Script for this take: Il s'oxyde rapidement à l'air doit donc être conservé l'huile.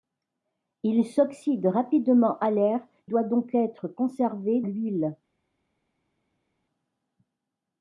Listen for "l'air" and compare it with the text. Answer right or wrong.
right